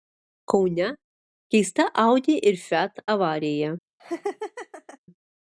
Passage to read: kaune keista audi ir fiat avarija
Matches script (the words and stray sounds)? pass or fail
fail